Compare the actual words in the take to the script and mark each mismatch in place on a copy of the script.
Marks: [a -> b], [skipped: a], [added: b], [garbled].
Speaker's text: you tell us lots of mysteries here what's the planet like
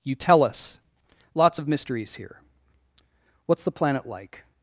you tell us lots of mysteries here what's the planet like